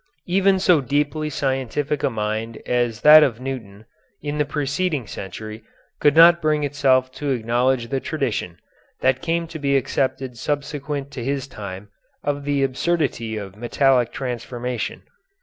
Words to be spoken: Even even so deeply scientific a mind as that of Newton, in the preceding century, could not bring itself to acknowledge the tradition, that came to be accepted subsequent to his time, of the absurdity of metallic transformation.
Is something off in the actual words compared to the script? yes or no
yes